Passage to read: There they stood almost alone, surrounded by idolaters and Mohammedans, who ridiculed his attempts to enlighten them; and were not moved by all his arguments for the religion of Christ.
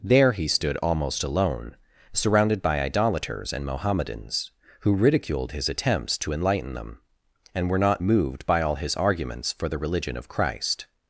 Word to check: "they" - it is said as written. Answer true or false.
false